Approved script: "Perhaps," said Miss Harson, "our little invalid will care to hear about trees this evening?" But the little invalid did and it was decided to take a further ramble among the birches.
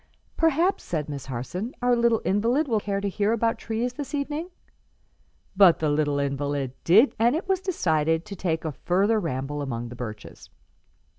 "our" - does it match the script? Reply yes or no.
yes